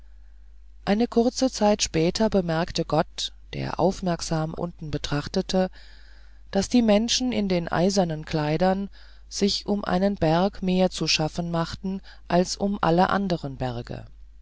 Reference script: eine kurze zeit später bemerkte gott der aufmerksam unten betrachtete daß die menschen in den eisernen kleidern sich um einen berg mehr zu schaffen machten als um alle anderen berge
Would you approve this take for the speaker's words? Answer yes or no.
yes